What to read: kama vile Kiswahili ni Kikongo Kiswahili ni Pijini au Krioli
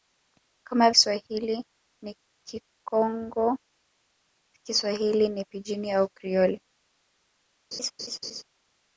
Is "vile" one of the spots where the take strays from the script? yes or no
yes